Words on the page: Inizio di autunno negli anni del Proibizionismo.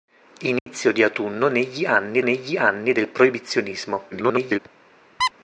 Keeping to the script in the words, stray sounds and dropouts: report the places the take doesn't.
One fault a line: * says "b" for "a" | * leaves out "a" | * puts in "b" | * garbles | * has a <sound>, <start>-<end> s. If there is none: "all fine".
* has a dropout, 0.6-0.7 s
* puts in "negli anni"
* garbles
* has a squeak, 5.2-5.3 s